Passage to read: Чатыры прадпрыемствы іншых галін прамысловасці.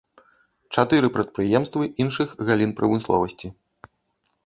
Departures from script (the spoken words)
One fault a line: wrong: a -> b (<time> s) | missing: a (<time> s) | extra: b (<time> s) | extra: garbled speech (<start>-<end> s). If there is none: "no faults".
no faults